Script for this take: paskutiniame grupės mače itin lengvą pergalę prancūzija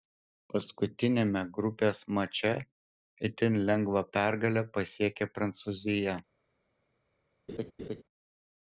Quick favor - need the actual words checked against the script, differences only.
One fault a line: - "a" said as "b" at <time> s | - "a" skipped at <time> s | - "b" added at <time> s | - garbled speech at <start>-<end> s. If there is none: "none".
- "pasiekė" added at 4.8 s